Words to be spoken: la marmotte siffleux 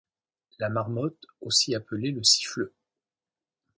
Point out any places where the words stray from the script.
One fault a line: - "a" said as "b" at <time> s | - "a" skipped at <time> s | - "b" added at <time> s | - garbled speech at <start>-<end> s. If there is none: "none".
- "aussi appelée le" added at 1.4 s